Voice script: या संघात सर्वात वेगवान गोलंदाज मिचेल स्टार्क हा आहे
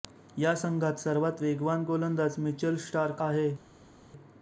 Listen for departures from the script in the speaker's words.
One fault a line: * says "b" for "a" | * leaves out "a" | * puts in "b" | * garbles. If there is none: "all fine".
* leaves out "हा"